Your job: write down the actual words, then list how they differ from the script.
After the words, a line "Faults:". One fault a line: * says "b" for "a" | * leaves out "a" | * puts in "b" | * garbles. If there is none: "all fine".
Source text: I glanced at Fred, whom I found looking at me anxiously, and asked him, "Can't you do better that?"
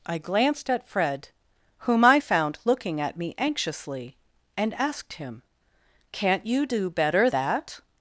I glanced at Fred, whom I found looking at me anxiously, and asked him, "Can't you do better that?"
Faults:
all fine